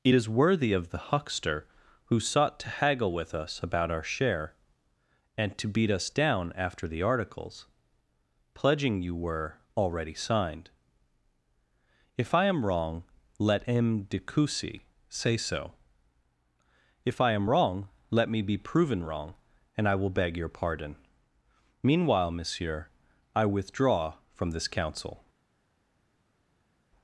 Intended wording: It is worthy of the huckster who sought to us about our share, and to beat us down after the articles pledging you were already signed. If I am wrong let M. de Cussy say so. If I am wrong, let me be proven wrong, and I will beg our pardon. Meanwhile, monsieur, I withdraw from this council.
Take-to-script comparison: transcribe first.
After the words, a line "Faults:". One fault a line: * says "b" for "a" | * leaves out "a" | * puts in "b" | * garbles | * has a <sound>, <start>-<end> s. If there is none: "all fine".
It is worthy of the huckster who sought to haggle with us about our share, and to beat us down after the articles pledging you were already signed. If I am wrong let M. de Cussy say so. If I am wrong, let me be proven wrong, and I will beg your pardon. Meanwhile, monsieur, I withdraw from this council.
Faults:
* puts in "haggle with"
* says "your" for "our"